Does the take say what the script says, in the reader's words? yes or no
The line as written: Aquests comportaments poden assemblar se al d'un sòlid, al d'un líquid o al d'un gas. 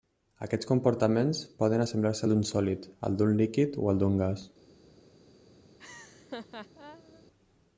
yes